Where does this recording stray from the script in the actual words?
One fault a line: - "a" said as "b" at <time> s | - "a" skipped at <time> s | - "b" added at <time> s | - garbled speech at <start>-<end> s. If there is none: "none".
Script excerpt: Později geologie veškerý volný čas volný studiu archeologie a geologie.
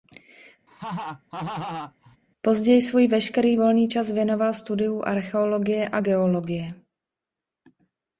- "geologie" said as "svůj" at 2.8 s
- "volný" said as "věnoval" at 4.1 s